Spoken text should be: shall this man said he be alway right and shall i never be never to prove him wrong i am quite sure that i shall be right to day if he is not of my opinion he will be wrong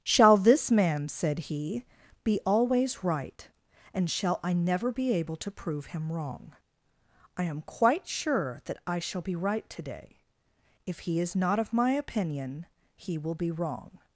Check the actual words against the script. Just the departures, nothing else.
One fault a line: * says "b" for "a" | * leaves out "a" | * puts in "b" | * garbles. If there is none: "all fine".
* says "always" for "alway"
* says "able" for "never"